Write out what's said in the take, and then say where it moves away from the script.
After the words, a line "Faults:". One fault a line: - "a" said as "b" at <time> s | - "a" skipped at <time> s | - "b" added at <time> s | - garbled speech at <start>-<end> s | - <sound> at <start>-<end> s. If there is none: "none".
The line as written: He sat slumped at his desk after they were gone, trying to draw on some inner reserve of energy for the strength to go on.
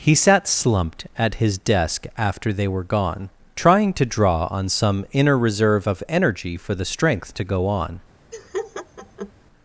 He sat slumped at his desk after they were gone, trying to draw on some inner reserve of energy for the strength to go on.
Faults:
- laugh at 8.3-9.3 s